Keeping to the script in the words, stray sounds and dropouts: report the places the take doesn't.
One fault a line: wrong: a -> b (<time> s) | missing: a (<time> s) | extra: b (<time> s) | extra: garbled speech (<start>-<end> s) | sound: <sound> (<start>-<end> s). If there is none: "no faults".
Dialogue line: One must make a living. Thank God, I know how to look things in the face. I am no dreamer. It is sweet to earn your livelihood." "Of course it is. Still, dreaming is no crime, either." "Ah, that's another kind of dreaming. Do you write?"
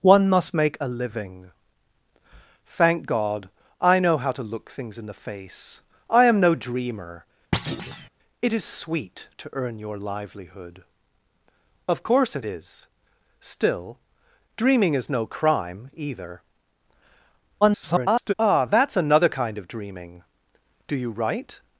sound: thud (7.5-8.1 s)
extra: garbled speech (17.6-18.3 s)